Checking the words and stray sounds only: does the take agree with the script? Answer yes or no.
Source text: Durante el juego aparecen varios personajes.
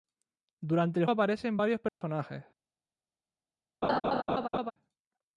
no